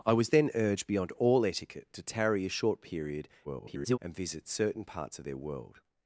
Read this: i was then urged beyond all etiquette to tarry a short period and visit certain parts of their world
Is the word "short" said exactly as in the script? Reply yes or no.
yes